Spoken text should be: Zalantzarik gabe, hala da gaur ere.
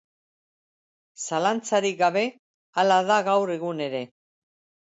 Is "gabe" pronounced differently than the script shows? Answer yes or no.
no